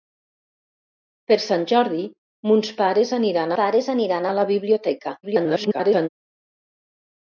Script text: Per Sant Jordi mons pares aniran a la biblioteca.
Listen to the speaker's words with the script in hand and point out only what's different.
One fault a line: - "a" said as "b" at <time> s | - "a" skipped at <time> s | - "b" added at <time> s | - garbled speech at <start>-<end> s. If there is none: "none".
- "pares aniran" added at 3.6 s
- garbled speech at 5.2-6.1 s